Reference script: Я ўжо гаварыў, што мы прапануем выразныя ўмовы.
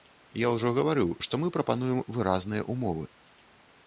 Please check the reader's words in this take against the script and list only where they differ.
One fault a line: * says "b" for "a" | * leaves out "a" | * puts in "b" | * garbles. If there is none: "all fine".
all fine